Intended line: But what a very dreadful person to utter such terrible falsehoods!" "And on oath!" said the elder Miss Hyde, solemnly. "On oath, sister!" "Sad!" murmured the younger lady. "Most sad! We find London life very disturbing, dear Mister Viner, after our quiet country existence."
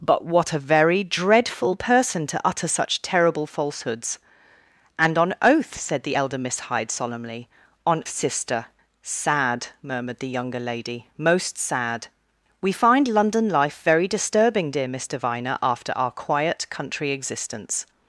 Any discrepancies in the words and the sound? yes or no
yes